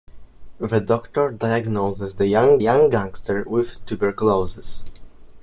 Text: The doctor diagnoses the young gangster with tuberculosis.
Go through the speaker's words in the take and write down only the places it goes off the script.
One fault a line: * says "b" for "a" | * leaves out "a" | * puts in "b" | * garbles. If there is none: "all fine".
* puts in "young"